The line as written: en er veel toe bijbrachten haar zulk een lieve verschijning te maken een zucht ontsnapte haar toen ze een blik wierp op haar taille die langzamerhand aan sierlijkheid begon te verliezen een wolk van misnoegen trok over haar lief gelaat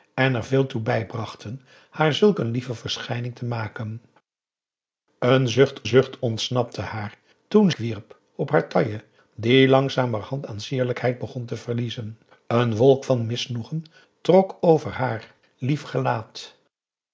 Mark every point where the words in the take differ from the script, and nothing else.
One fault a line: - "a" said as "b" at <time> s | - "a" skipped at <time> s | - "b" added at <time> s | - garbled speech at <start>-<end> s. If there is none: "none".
- "zucht" added at 5.8 s
- "ze een blik" skipped at 7.7 s